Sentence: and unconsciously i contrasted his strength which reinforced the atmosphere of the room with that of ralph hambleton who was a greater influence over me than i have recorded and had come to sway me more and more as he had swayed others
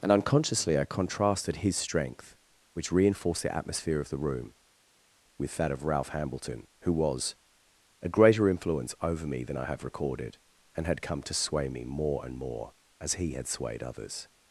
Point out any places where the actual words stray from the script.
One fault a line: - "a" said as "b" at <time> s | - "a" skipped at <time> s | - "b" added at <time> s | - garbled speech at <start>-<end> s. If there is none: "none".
none